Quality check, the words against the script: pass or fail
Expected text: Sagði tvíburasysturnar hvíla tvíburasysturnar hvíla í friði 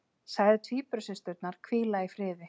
fail